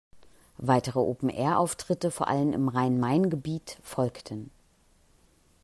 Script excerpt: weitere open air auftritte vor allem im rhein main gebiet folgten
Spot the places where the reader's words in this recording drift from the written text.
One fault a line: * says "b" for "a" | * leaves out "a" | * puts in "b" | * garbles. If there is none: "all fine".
all fine